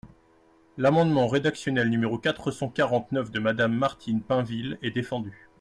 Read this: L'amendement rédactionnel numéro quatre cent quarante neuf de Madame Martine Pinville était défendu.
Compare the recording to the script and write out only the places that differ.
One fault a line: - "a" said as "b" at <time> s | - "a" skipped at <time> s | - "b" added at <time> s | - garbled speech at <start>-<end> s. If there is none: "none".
- "était" said as "est" at 4.8 s